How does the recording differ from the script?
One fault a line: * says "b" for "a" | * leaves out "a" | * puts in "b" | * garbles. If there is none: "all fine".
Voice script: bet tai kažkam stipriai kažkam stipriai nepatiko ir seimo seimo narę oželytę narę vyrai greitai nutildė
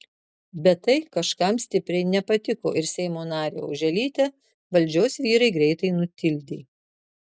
* leaves out "kažkam stipriai"
* leaves out "seimo"
* says "valdžios" for "narę"